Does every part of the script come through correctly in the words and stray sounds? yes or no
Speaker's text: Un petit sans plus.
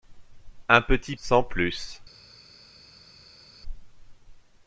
yes